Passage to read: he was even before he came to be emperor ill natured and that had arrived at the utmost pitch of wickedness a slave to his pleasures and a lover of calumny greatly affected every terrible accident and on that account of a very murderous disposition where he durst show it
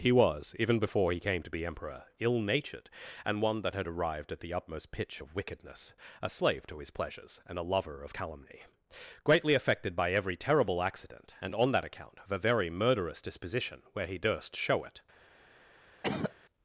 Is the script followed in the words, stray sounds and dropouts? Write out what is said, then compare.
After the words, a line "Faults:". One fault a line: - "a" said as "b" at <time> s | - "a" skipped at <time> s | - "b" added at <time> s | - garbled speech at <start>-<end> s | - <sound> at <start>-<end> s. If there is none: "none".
he was even before he came to be emperor ill natured and one that had arrived at the utmost pitch of wickedness a slave to his pleasures and a lover of calumny greatly affected by every terrible accident and on that account of a very murderous disposition where he durst show it
Faults:
- "one" added at 3.4 s
- "by" added at 9.9 s
- cough at 16.0-16.3 s